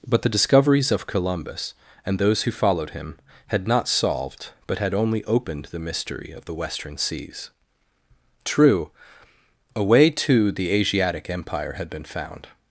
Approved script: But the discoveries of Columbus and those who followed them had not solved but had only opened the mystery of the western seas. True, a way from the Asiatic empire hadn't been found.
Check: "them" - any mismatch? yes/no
yes